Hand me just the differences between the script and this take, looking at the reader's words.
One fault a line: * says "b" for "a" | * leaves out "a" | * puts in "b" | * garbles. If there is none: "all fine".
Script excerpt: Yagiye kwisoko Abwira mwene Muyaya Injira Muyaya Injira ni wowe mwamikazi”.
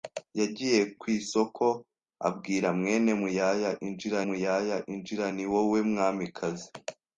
all fine